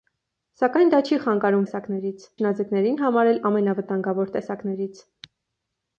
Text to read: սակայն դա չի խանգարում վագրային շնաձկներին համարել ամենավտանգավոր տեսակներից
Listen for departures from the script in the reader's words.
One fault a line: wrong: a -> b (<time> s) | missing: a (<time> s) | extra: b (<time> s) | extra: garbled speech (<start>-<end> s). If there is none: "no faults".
wrong: վագրային -> տեսակներից (1.6 s)